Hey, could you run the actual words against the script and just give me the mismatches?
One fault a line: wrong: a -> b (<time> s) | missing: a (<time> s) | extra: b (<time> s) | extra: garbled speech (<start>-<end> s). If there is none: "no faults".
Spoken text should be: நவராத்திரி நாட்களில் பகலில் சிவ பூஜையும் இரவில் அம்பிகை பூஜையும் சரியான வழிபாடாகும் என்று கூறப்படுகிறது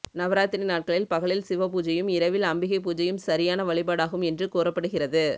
no faults